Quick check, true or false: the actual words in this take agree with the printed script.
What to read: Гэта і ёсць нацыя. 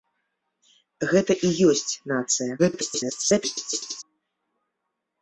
false